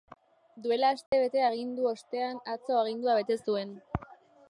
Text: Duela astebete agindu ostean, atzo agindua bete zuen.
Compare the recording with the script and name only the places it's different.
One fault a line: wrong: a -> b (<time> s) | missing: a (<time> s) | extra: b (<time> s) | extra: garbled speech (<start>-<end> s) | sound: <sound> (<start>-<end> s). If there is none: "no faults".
sound: dropout (1.1-1.1 s)